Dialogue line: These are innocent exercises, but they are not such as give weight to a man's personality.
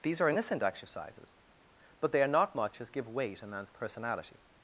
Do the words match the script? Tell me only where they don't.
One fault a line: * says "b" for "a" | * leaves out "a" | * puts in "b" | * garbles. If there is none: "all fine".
* says "much" for "such"
* leaves out "to"